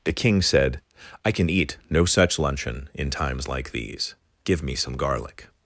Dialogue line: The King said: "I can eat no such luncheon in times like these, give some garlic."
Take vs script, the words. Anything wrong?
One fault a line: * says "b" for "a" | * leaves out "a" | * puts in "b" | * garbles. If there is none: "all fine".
* puts in "me"